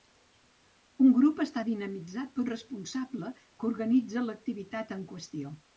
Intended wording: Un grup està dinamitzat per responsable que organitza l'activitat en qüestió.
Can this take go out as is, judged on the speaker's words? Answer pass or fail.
pass